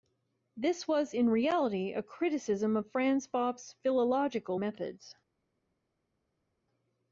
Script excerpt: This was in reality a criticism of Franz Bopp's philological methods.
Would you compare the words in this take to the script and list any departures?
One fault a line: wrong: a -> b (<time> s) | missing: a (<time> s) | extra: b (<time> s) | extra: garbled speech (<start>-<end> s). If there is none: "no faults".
no faults